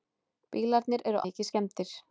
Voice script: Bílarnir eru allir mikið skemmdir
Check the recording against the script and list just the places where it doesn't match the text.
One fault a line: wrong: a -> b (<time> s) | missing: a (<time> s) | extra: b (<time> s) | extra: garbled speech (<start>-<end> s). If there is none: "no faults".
missing: allir (1.2 s)